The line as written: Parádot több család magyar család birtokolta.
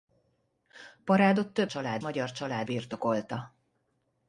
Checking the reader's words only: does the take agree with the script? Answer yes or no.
yes